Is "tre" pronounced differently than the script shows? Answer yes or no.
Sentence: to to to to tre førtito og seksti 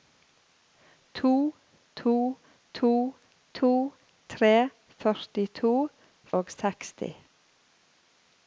no